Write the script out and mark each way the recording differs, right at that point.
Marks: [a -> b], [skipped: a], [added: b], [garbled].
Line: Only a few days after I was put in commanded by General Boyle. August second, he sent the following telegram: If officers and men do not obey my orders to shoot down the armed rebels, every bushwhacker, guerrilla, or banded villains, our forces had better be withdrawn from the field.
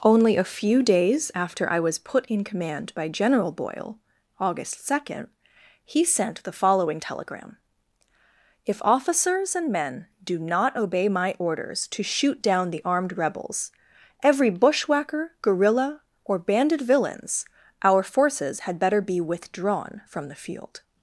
Only a few days after I was put in [commanded -> command] by General Boyle. August second, he sent the following telegram: If officers and men do not obey my orders to shoot down the armed rebels, every bushwhacker, guerrilla, or banded villains, our forces had better be withdrawn from the field.